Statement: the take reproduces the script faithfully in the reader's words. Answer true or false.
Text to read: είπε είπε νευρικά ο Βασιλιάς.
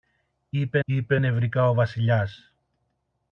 true